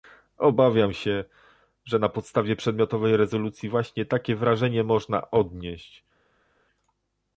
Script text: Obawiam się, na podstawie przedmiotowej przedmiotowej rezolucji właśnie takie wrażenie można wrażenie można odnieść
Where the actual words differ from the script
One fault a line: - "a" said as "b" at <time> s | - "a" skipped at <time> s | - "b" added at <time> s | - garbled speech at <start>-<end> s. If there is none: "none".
- "że" added at 1.9 s
- "przedmiotowej" skipped at 3.2 s
- "wrażenie można" skipped at 5.3 s